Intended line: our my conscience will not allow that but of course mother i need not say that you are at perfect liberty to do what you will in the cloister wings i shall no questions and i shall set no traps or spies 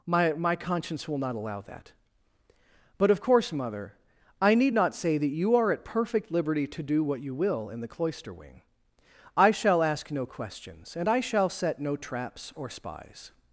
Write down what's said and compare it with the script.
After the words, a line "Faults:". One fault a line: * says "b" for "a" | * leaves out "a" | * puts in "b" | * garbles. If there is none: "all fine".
my my conscience will not allow that but of course mother i need not say that you are at perfect liberty to do what you will in the cloister wing i shall ask no questions and i shall set no traps or spies
Faults:
* says "my" for "our"
* says "wing" for "wings"
* puts in "ask"